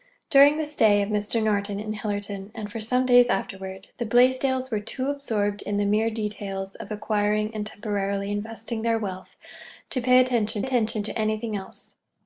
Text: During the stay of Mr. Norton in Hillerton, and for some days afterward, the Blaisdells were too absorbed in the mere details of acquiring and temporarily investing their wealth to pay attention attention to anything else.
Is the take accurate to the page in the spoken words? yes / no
yes